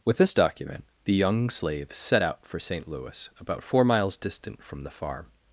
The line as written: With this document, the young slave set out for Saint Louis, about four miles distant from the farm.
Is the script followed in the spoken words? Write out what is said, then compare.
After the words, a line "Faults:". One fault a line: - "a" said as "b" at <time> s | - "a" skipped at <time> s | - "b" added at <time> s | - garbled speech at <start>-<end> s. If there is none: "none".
With this document, the young slave set out for Saint Louis, about four miles distant from the farm.
Faults:
none